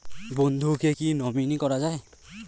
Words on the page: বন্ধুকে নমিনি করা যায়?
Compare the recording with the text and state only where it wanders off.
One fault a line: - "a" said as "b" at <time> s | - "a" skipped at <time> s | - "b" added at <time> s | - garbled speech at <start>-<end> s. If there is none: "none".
- "কী" added at 0.9 s